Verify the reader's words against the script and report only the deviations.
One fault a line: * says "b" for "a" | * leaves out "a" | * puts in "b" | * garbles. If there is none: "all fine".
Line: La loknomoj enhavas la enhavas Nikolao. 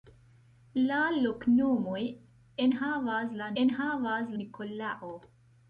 all fine